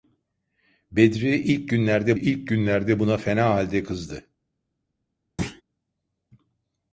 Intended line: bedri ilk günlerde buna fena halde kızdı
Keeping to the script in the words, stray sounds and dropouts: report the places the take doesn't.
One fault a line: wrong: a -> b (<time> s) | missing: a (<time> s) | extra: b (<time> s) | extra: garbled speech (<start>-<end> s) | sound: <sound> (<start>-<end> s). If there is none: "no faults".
extra: ilk günlerde (2.1 s)
sound: thud (5.4-5.6 s)